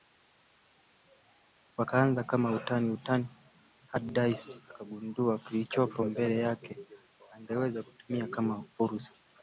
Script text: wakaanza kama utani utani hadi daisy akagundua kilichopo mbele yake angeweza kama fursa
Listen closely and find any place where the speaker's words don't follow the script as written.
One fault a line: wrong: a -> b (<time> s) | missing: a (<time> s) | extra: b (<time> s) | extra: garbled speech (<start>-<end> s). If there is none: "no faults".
extra: kutumia (7.8 s)